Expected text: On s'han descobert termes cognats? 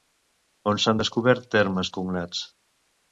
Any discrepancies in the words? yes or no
no